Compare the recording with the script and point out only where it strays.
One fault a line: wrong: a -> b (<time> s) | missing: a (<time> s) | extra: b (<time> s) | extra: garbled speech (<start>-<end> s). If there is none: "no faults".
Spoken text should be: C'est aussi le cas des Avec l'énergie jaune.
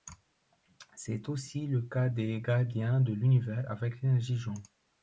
extra: Gardiens de l'univers (2.4 s)